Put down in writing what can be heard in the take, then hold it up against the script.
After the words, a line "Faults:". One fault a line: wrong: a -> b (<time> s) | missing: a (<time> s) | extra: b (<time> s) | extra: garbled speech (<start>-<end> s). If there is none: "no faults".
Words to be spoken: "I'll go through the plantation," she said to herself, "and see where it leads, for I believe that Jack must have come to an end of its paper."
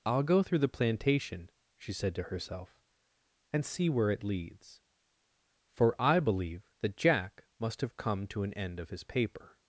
"I'll go through the plantation," she said to herself, "and see where it leads, for I believe that Jack must have come to an end of his paper."
Faults:
wrong: its -> his (8.9 s)